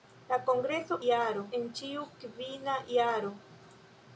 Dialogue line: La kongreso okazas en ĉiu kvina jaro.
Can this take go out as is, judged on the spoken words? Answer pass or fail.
fail